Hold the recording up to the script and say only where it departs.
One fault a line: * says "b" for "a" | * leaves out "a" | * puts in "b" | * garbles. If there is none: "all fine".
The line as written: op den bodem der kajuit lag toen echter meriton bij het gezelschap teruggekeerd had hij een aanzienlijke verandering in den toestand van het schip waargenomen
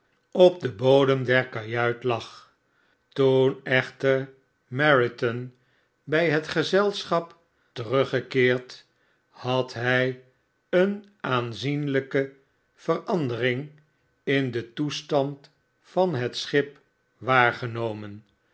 all fine